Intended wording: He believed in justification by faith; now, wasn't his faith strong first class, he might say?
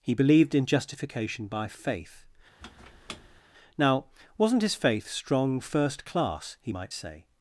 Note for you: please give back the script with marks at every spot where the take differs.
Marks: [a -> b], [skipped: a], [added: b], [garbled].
He believed in justification by faith; now, wasn't his faith strong first class, he might say?